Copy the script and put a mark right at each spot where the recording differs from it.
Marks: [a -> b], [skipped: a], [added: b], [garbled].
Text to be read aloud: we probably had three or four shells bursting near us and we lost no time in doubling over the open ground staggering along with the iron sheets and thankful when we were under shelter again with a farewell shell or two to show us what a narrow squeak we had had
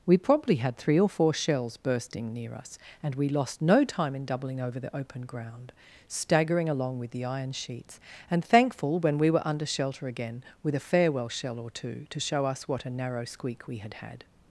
we probably had three or four shells bursting near us and we lost no time in doubling over the open ground staggering along with the iron sheets and thankful when we were under shelter again with a farewell shell or two to show us what a narrow squeak we had had